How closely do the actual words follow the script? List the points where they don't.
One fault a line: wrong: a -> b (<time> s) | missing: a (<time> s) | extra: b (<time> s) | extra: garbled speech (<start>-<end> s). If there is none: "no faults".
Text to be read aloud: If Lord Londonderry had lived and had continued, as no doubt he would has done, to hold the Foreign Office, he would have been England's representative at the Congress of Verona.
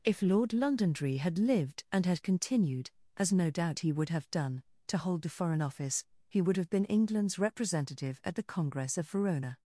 wrong: has -> have (4.1 s)